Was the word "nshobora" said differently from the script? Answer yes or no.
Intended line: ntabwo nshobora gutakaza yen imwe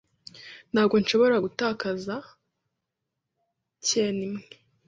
no